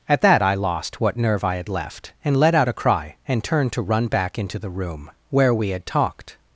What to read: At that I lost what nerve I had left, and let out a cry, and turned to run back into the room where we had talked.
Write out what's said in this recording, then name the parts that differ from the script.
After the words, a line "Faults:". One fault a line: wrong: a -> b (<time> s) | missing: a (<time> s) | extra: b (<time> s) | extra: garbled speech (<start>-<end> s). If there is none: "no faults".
At that I lost what nerve I had left, and let out a cry, and turned to run back into the room where we had talked.
Faults:
no faults